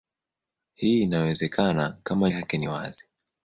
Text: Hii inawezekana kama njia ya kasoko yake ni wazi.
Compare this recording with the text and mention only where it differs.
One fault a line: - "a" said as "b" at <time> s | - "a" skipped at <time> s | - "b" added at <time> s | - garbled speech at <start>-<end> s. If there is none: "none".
- "njia ya kasoko" skipped at 2.3 s